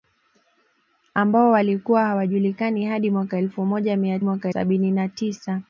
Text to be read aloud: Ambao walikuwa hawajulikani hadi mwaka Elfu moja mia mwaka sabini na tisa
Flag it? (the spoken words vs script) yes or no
no